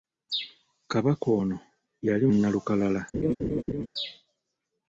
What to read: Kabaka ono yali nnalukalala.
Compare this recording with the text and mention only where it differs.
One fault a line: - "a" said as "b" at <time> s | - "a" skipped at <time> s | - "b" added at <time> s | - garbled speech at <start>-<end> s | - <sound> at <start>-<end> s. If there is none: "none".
- laugh at 3.1-3.9 s